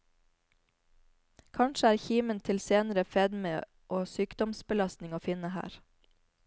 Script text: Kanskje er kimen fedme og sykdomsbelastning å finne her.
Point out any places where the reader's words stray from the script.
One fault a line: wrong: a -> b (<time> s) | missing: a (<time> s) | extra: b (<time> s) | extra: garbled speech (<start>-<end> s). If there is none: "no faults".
extra: til senere (2.4 s)